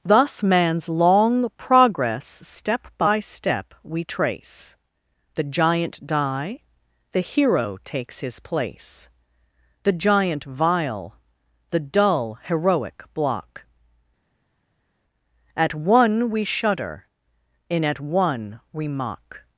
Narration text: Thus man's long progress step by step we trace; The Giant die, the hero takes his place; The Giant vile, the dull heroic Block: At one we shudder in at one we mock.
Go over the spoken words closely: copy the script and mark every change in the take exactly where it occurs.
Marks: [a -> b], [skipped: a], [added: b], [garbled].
Thus man's long progress step by step we trace; The Giant die, the hero takes his place; The Giant vile, the dull heroic Block: At one we shudder in at one we mock.